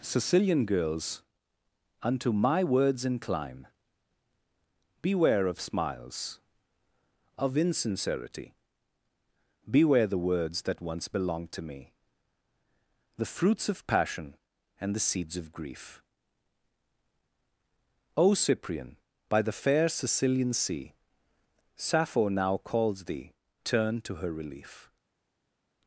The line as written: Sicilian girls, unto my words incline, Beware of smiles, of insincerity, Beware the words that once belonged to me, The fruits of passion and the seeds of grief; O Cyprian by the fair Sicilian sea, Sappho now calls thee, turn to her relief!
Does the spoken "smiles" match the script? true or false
true